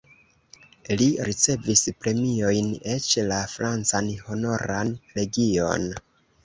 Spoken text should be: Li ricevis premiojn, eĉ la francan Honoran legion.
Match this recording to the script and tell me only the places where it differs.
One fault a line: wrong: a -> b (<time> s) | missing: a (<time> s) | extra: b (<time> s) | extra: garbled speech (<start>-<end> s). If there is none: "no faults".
no faults